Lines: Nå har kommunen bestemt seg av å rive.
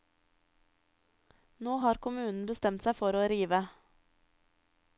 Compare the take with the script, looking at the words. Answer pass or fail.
fail